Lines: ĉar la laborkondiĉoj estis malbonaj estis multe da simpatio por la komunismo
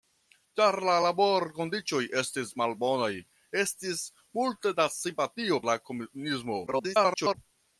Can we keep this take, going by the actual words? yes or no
no